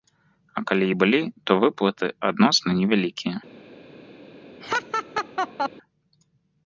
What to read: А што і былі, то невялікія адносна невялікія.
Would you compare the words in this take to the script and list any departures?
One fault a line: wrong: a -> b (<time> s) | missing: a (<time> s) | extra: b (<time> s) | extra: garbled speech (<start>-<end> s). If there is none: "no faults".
wrong: што -> калі (0.7 s)
wrong: невялікія -> выплаты (1.7 s)